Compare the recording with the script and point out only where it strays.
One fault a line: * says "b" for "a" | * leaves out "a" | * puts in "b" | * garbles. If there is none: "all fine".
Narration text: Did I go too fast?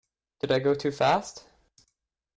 all fine